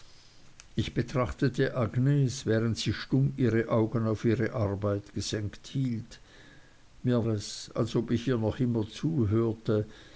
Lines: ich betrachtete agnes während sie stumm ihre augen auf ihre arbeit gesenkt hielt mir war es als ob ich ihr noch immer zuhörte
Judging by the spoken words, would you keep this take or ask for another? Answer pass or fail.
fail